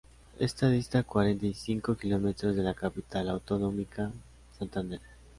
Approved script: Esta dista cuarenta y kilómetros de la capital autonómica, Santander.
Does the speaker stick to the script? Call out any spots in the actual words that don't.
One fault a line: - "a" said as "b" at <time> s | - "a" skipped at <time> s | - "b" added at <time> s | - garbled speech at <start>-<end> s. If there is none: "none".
- "cinco" added at 1.5 s